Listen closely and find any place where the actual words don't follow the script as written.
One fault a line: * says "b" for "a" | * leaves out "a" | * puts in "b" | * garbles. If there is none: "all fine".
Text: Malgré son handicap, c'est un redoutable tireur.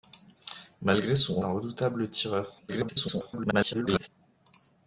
* leaves out "handicap c'est"
* garbles